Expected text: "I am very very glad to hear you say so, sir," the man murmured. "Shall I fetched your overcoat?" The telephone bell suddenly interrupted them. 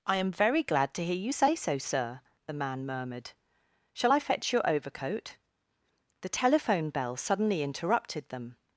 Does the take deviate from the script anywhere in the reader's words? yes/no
yes